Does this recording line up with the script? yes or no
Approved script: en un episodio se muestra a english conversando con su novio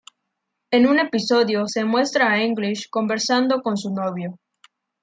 yes